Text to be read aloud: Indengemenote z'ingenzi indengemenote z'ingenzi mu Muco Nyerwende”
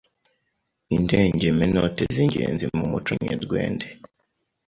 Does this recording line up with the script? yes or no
no